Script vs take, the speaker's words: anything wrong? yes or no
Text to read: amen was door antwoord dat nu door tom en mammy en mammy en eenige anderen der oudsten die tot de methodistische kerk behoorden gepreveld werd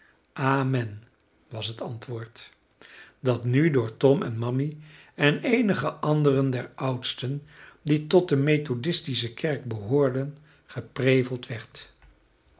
yes